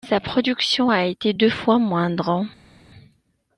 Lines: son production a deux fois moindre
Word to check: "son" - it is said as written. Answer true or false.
false